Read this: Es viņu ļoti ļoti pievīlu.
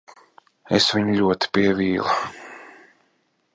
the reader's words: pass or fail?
fail